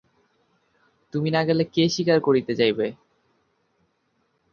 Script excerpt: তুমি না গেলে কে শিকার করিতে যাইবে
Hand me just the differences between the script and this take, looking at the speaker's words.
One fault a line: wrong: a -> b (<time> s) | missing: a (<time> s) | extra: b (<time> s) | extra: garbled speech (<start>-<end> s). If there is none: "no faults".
no faults